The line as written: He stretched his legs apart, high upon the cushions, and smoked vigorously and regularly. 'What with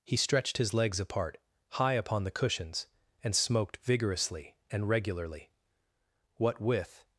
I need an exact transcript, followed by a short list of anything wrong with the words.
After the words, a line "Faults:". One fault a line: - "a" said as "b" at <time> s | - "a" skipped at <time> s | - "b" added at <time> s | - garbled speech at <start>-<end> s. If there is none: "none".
He stretched his legs apart, high upon the cushions, and smoked vigorously and regularly. 'What with
Faults:
none